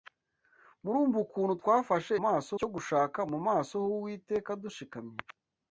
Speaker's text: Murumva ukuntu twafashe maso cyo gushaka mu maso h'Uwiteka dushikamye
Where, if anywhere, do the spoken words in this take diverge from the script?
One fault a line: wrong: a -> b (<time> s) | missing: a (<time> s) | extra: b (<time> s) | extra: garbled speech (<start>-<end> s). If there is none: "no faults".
no faults